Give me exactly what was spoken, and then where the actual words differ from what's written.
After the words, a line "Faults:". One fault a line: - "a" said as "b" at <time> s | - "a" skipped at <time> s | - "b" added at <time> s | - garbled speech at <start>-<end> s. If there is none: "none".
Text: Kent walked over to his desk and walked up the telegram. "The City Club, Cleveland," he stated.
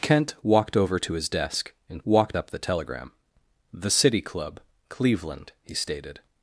Kent walked over to his desk and walked up the telegram. "The City Club, Cleveland," he stated.
Faults:
none